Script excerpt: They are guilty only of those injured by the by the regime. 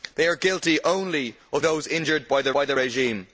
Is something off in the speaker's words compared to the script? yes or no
no